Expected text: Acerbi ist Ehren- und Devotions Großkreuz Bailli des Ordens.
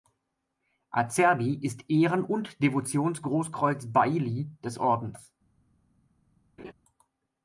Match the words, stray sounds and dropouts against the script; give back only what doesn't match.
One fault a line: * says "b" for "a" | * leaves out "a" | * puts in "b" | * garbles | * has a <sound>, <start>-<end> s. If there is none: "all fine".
* has a laugh, 6.6-6.7 s